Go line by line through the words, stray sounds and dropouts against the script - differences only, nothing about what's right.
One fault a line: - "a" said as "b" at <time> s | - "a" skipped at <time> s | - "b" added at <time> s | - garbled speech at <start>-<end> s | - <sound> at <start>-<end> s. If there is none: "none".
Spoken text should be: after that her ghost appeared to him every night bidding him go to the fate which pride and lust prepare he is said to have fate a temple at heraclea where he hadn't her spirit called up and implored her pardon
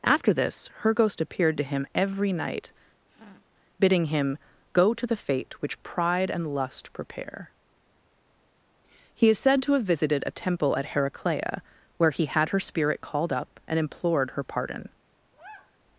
- "that" said as "this" at 0.3 s
- sniff at 3.0-3.5 s
- "fate" said as "visited" at 9.8 s
- "hadn't" said as "had" at 12.3 s
- sigh at 15.3-15.8 s